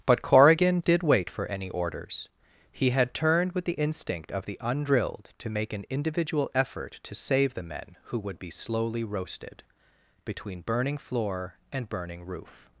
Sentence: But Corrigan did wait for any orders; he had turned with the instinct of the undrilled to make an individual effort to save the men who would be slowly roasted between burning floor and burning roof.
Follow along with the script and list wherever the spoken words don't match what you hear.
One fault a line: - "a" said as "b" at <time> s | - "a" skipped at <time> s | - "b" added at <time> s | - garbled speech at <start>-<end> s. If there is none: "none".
none